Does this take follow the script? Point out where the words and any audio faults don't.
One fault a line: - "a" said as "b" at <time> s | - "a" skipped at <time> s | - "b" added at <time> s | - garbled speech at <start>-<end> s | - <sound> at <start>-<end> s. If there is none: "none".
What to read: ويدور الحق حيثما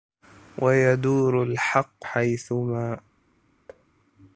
- thud at 3.7-3.8 s